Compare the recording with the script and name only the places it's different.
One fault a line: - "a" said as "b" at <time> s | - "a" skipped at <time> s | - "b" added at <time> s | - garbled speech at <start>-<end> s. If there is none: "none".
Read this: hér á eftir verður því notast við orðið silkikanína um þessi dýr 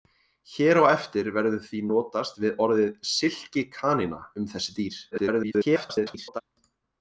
- garbled speech at 5.1-6.4 s